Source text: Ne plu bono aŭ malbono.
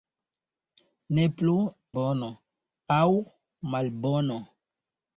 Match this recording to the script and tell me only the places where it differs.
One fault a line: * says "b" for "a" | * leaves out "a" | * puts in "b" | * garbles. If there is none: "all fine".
all fine